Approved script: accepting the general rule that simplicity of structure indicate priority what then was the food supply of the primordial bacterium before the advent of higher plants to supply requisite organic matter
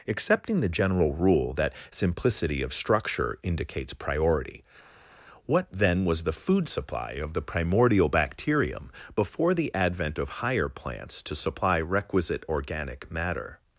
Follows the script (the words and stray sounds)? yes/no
no